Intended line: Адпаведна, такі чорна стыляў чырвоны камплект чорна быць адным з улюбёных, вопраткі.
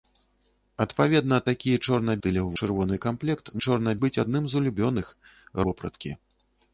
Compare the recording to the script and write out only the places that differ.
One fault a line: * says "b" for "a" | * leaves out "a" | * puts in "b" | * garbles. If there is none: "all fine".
all fine